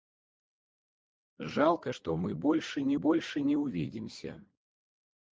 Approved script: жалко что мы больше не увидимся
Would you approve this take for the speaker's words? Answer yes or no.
no